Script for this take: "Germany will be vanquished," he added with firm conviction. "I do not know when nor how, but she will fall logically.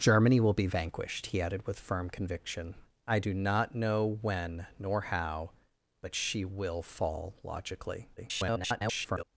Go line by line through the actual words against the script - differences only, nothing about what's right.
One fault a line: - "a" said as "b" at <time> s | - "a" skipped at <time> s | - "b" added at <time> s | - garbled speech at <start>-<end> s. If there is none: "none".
- garbled speech at 8.2-9.2 s